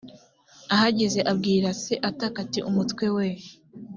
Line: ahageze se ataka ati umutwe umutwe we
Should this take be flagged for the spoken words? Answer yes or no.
yes